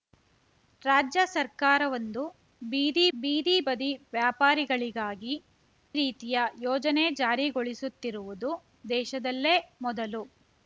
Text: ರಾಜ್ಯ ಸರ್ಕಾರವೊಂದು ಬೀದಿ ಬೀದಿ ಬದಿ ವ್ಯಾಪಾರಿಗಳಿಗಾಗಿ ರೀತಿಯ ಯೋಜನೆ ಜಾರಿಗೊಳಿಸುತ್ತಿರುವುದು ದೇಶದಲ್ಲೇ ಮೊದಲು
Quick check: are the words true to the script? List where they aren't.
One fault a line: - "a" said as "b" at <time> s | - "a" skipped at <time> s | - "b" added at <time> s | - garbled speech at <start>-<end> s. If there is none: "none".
none